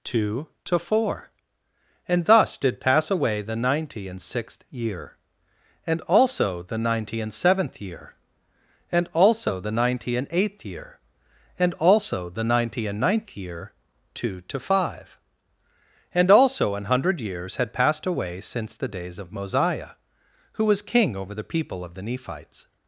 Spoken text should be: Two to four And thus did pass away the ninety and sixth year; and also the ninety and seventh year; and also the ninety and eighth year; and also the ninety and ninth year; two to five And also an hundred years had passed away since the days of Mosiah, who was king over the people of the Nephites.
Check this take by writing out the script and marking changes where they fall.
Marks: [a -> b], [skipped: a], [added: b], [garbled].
Two to four And thus did pass away the ninety and sixth year; and also the ninety and seventh year; and also the ninety and eighth year; and also the ninety and ninth year; two to five And also an hundred years had passed away since the days of Mosiah, who was king over the people of the Nephites.